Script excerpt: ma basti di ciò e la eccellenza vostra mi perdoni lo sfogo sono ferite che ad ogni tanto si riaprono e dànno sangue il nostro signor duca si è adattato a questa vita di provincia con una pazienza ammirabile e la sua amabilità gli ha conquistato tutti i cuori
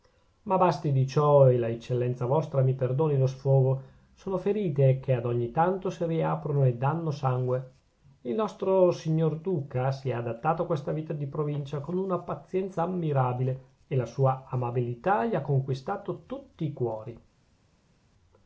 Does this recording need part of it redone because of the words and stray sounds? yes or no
no